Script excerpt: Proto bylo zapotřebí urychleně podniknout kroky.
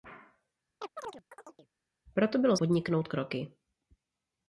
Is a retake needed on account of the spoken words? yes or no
yes